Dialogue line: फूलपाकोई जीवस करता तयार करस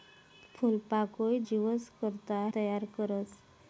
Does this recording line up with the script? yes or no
yes